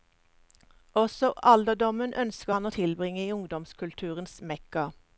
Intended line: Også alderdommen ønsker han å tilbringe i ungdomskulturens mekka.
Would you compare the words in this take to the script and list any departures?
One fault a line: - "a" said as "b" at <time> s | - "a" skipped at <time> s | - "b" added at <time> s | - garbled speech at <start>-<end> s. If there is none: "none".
none